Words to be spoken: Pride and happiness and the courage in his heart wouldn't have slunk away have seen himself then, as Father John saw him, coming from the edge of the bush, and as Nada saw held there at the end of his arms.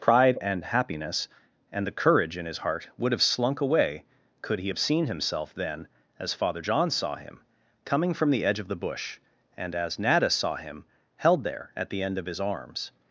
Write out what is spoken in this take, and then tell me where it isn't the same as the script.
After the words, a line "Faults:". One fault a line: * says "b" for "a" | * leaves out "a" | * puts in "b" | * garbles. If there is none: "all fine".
Pride and happiness and the courage in his heart would have slunk away could he have seen himself then, as Father John saw him, coming from the edge of the bush, and as Nada saw him, held there at the end of his arms.
Faults:
* says "would" for "wouldn't"
* puts in "could he"
* puts in "him"